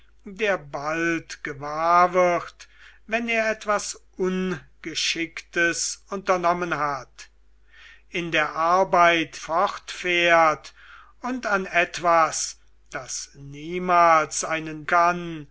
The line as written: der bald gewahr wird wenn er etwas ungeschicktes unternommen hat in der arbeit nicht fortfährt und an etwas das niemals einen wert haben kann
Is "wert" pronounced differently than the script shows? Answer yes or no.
yes